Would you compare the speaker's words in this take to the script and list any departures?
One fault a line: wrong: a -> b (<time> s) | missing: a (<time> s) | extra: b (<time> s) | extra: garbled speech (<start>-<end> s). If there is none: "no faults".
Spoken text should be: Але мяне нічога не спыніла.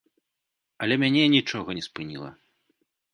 no faults